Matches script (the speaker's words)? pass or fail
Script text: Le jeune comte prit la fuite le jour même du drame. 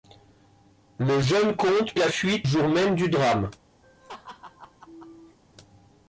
fail